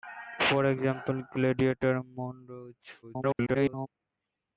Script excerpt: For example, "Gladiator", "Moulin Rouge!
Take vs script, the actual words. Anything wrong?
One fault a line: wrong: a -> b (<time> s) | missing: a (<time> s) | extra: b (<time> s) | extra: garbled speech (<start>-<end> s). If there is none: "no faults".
extra: garbled speech (3.0-3.9 s)